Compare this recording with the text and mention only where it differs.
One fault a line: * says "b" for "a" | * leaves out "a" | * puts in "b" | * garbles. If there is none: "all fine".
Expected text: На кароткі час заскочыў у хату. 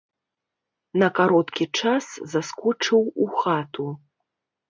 all fine